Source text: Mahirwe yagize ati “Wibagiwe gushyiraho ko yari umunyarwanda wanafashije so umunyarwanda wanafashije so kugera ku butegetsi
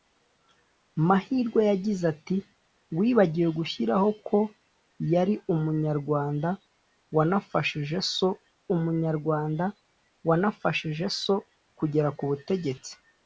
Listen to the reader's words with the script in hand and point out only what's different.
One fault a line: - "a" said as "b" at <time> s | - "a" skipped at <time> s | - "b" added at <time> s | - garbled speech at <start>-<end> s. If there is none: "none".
none